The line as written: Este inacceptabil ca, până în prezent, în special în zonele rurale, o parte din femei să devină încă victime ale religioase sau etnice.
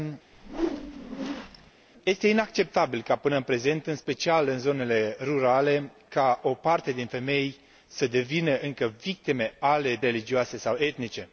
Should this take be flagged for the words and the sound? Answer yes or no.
yes